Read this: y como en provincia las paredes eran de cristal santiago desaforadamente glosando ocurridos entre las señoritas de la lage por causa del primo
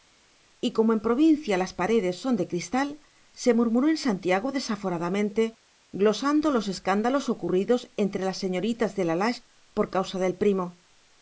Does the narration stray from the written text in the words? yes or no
yes